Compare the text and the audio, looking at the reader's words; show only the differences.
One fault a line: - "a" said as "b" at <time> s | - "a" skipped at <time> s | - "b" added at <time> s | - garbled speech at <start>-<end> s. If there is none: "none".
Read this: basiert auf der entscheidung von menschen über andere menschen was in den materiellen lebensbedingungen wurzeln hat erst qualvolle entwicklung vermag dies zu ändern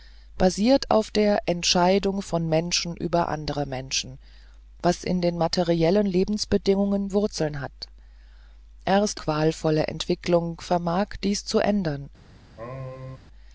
none